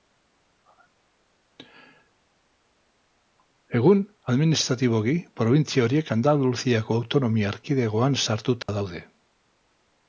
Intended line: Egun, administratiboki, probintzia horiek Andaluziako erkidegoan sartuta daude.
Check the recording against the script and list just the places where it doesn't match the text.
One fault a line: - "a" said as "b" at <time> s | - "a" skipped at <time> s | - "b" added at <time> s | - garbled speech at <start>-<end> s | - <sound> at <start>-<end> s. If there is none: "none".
- "autonomia" added at 7.0 s
- dropout at 8.6-8.7 s